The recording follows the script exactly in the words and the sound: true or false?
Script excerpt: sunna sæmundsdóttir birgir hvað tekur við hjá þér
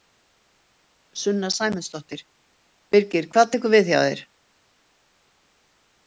true